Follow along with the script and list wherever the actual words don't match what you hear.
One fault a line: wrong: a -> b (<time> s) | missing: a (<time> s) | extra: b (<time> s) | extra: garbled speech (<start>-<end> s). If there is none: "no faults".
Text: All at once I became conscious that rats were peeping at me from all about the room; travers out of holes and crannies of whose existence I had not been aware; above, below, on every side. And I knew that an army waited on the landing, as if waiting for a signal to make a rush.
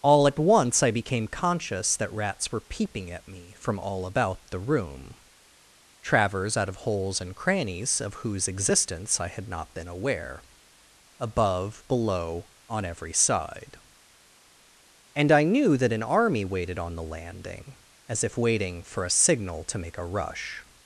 no faults